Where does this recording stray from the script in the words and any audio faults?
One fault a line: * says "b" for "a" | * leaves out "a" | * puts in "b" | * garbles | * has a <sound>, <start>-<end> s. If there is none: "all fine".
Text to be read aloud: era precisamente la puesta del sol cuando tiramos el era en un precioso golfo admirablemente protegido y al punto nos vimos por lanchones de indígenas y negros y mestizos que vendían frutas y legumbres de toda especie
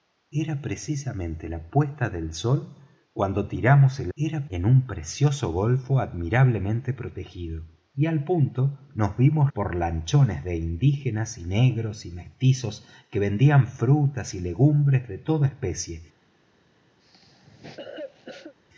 * has a cough, 17.0-18.5 s